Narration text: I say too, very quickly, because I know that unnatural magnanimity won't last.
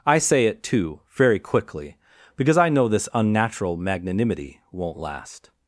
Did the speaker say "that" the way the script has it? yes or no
no